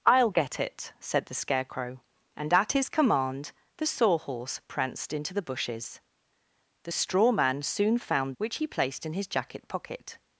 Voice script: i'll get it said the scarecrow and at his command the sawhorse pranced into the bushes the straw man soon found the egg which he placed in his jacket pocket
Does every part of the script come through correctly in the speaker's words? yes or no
no